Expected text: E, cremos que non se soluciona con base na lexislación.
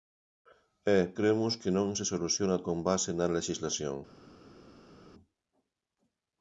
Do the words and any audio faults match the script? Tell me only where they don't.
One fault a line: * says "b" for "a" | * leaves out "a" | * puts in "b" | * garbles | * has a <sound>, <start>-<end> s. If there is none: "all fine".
all fine